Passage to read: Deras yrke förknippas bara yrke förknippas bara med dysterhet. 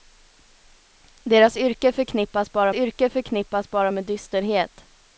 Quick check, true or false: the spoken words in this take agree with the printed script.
true